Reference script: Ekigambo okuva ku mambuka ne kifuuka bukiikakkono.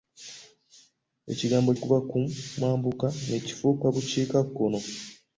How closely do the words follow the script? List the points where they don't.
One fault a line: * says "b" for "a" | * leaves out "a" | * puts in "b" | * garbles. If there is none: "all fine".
all fine